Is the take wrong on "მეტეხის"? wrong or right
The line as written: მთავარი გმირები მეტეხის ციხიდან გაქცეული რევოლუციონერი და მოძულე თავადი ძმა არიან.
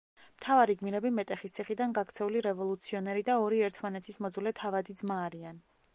right